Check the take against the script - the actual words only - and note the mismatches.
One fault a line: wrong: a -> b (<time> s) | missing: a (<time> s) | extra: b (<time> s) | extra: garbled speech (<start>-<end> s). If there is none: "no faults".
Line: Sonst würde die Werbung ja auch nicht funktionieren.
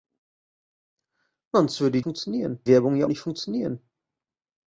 wrong: die -> funktionieren (2.0 s)
missing: auch (3.1 s)